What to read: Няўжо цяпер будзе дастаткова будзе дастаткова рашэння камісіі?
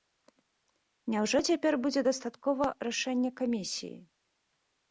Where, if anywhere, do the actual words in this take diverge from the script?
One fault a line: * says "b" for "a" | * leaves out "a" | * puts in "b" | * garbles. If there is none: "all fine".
* leaves out "будзе дастаткова"